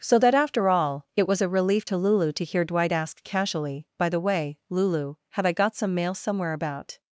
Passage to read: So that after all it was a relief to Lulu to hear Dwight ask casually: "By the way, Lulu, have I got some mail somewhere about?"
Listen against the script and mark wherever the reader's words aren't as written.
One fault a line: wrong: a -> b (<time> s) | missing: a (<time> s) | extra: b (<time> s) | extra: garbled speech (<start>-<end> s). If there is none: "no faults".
no faults